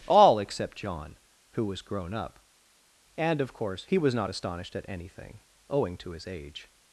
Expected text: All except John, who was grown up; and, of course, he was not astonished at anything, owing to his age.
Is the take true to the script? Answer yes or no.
yes